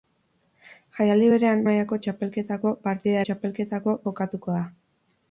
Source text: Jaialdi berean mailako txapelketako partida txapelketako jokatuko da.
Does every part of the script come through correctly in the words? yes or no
yes